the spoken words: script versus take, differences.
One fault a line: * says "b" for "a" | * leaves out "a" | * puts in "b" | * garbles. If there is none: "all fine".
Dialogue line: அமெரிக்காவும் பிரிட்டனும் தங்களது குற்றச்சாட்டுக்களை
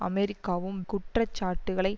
* leaves out "பிரிட்டனும் தங்களது"